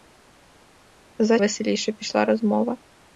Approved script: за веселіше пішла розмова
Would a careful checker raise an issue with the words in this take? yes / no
no